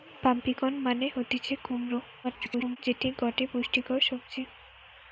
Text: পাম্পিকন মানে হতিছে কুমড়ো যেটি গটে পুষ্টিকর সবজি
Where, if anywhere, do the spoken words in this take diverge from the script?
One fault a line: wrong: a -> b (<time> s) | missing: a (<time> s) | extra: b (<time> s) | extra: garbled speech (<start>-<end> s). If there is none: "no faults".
extra: garbled speech (2.2-2.8 s)